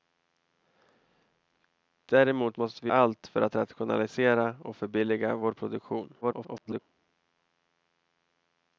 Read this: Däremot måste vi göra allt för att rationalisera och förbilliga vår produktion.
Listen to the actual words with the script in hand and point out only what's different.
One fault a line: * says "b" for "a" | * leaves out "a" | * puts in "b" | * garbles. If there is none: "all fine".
* leaves out "göra"
* garbles